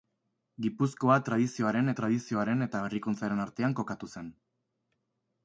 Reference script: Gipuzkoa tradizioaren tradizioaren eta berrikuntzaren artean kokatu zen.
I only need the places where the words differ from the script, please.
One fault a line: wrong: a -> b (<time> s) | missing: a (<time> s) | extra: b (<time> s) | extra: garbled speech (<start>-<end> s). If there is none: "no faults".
no faults